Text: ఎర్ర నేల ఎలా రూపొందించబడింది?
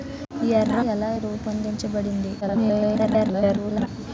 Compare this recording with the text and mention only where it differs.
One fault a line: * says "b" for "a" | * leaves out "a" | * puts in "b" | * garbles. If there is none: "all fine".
* leaves out "నేల"
* garbles